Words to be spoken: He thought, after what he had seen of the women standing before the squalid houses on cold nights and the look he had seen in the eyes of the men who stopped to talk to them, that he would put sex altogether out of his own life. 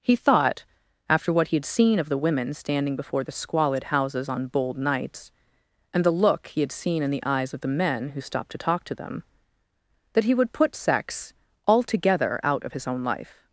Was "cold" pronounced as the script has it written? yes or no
no